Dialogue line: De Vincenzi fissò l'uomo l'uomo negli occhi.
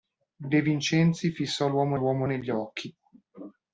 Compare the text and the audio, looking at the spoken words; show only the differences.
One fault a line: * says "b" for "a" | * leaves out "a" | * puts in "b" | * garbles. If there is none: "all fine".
all fine